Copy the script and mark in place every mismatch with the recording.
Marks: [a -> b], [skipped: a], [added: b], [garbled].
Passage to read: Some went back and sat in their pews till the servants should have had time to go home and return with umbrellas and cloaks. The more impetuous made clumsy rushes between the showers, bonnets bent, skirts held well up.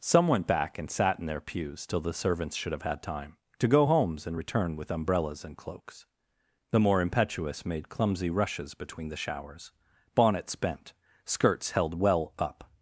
Some went back and sat in their pews till the servants should have had time to go [home -> homes] and return with umbrellas and cloaks. The more impetuous made clumsy rushes between the showers, bonnets bent, skirts held well up.